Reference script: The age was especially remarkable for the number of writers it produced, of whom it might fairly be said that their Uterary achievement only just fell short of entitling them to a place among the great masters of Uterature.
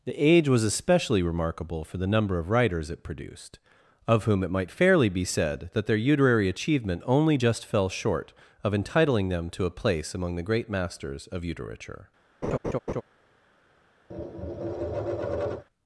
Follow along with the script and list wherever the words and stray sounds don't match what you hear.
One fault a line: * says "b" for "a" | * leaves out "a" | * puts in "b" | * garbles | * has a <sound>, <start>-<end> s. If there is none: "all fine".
* has a laugh, 12.4-13.0 s
* has a tap, 14.1-15.7 s